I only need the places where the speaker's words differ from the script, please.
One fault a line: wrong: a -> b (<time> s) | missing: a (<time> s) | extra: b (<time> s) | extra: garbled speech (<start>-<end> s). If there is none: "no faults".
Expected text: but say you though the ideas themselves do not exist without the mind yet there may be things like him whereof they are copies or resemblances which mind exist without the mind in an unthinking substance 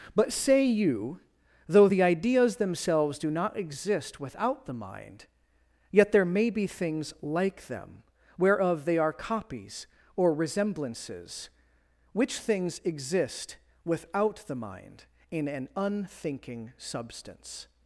wrong: him -> them (7.7 s)
wrong: mind -> things (12.4 s)